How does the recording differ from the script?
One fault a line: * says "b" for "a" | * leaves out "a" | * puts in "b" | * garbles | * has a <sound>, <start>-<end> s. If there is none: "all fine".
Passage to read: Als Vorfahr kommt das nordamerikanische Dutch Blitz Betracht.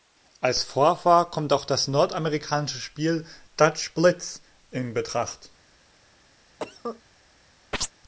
* puts in "auch"
* puts in "Spiel"
* puts in "in"
* has a cough, 6.6-7.0 s
* has a chirp, 7.7-7.9 s